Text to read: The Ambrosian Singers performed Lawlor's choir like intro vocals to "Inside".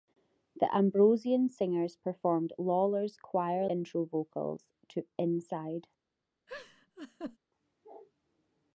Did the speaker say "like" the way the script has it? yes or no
no